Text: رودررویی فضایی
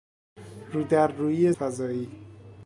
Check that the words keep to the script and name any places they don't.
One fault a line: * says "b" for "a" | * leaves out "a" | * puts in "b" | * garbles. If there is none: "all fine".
all fine